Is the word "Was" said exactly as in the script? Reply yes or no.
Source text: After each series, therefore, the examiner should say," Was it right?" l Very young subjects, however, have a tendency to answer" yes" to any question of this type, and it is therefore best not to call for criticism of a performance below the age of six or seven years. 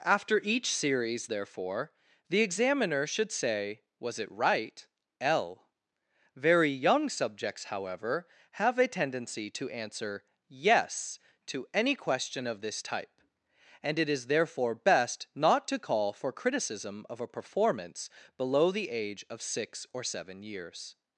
yes